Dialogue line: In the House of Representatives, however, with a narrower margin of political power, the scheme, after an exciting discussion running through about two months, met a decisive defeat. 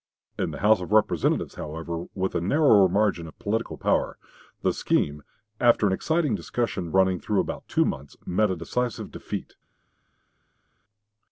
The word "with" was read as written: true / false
true